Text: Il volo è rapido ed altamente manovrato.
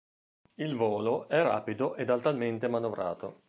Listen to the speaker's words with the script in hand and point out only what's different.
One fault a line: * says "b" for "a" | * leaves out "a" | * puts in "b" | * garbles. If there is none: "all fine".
all fine